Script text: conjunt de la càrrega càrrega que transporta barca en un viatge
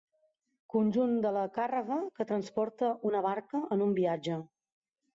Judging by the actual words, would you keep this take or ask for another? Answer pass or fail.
fail